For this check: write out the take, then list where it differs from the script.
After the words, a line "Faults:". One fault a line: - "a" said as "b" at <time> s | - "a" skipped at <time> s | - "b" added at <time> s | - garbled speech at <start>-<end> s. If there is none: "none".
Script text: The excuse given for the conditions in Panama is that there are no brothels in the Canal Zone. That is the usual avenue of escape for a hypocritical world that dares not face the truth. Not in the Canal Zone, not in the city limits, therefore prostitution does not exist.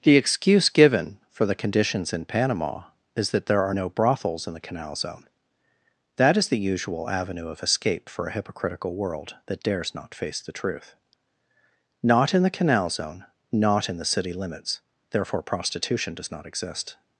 The excuse given for the conditions in Panama is that there are no brothels in the Canal Zone. That is the usual avenue of escape for a hypocritical world that dares not face the truth. Not in the Canal Zone, not in the city limits, therefore prostitution does not exist.
Faults:
none